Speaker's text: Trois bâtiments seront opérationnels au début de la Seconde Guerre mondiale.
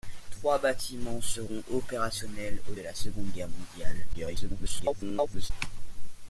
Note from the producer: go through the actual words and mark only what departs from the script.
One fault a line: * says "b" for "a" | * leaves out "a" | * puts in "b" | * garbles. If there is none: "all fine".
* leaves out "début"
* garbles